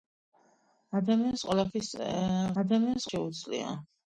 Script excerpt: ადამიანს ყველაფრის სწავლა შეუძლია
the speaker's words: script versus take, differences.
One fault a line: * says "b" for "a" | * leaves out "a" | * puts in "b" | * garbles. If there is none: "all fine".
* says "ადამიანს" for "სწავლა"